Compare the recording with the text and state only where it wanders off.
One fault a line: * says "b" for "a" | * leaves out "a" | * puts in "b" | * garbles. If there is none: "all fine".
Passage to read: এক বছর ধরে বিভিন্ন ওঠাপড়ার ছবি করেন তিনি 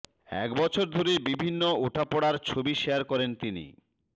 * puts in "শেয়ার"